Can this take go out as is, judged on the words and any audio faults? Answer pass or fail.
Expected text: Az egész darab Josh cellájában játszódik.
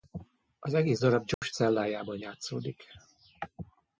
fail